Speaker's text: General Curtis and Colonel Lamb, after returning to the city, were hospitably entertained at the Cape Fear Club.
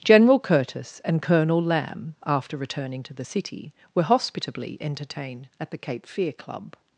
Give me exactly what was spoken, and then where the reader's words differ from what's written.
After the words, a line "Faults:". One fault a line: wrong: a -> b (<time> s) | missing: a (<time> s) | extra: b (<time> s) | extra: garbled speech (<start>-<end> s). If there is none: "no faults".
General Curtis and Colonel Lamb, after returning to the city, were hospitably entertained at the Cape Fear Club.
Faults:
no faults